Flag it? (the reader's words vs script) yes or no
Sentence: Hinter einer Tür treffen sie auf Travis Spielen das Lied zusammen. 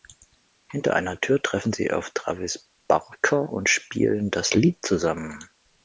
yes